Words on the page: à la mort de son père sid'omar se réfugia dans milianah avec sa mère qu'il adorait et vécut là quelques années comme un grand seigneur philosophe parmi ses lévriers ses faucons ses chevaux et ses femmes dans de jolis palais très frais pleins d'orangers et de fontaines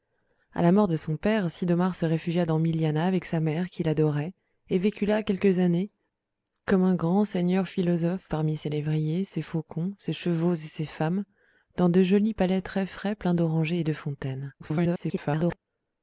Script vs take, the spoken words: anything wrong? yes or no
yes